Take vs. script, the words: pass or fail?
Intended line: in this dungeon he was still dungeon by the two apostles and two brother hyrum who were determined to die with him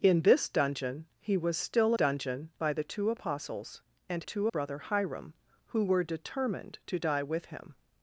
pass